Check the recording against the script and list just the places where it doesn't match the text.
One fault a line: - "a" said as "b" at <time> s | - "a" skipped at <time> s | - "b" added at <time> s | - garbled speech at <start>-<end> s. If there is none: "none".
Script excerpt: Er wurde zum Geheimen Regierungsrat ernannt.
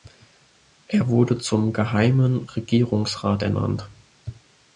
none